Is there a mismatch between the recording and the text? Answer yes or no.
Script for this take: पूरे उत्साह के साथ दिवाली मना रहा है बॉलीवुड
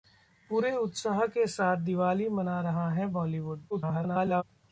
yes